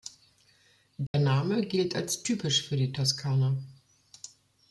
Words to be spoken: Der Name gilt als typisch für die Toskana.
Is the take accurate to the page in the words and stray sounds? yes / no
no